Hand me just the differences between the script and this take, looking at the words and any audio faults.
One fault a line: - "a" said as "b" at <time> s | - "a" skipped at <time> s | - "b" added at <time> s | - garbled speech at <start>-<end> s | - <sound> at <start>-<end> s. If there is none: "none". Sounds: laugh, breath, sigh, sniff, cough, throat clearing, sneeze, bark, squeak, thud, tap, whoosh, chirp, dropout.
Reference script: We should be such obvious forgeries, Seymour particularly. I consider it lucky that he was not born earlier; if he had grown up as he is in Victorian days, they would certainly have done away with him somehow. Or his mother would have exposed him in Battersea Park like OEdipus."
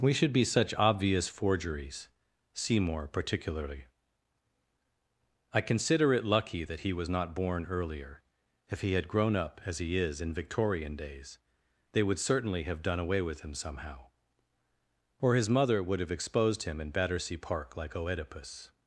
none